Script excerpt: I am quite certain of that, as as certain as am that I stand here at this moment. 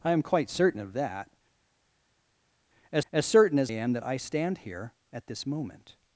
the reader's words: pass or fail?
pass